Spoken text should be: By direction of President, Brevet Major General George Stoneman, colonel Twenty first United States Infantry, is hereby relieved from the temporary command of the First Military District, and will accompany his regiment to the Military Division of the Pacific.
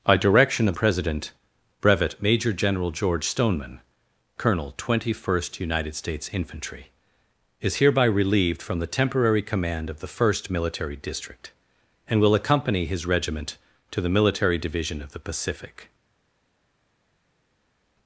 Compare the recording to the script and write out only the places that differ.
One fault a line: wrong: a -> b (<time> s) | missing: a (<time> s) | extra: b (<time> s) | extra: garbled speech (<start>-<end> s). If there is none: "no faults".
no faults